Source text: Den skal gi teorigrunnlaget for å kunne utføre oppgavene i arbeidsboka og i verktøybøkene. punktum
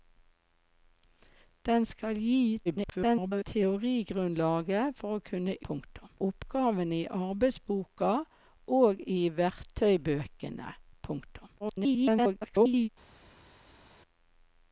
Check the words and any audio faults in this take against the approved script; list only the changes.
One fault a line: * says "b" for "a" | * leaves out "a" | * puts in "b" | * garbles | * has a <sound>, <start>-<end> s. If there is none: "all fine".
* garbles
* says "punktum" for "utføre"
* garbles